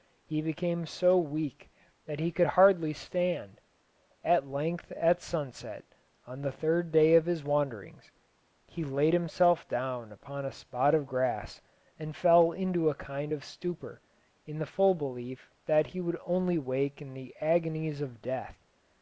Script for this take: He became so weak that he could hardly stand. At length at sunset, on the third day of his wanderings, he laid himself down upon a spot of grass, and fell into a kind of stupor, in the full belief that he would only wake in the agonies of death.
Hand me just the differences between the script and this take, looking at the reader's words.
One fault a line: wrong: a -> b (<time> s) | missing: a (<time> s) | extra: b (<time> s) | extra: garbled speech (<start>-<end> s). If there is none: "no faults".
no faults